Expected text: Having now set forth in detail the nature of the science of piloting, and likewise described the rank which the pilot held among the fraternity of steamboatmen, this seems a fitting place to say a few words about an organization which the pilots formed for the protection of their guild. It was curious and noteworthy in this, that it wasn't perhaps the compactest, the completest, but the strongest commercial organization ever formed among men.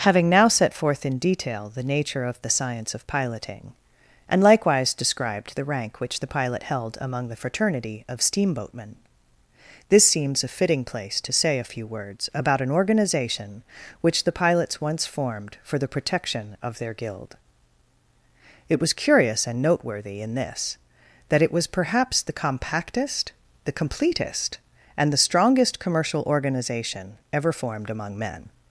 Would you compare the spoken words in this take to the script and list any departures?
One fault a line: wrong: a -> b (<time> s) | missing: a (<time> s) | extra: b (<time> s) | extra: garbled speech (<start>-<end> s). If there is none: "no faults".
extra: once (14.8 s)
wrong: wasn't -> was (21.5 s)
wrong: but -> and (25.0 s)